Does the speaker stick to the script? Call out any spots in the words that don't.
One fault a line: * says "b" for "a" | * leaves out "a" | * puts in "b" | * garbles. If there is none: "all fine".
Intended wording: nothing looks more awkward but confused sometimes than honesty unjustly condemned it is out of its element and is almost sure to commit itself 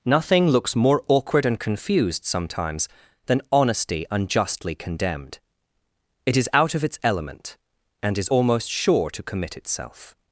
* says "and" for "but"